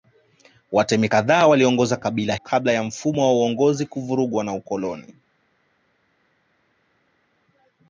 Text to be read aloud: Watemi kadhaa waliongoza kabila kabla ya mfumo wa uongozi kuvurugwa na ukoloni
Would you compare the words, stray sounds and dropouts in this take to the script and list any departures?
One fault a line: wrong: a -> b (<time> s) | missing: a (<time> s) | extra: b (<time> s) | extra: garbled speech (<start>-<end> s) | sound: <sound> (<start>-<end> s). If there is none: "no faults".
no faults